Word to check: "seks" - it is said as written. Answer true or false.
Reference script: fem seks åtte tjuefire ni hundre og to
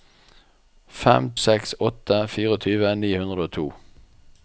true